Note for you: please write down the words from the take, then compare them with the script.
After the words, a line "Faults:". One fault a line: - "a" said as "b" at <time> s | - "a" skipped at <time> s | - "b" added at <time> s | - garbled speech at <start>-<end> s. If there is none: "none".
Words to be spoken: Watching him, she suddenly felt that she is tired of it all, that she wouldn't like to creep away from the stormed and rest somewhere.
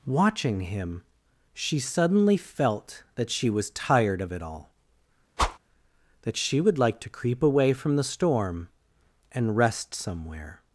Watching him, she suddenly felt that she was tired of it all, that she would like to creep away from the storm and rest somewhere.
Faults:
- "is" said as "was" at 3.5 s
- "wouldn't" said as "would" at 6.6 s
- "stormed" said as "storm" at 8.0 s